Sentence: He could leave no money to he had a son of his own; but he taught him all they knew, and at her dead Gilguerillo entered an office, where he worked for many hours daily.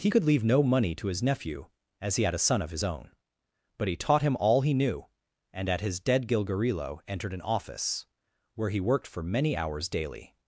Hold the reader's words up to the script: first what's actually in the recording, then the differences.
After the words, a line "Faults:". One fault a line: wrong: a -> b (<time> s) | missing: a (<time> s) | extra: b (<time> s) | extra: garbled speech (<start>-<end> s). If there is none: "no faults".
He could leave no money to his nephew, as he had a son of his own; but he taught him all he knew, and at his dead Gilguerillo entered an office, where he worked for many hours daily.
Faults:
extra: his nephew as (1.1 s)
wrong: they -> he (4.6 s)
wrong: her -> his (5.8 s)